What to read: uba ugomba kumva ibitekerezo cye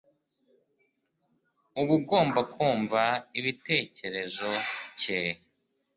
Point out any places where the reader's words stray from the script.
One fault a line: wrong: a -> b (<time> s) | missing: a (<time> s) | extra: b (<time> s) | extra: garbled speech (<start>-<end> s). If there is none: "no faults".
no faults